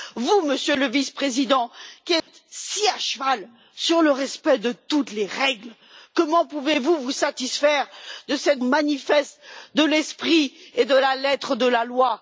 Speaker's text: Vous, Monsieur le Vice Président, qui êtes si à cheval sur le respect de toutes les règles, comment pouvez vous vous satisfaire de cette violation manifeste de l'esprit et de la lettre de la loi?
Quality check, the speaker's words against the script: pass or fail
fail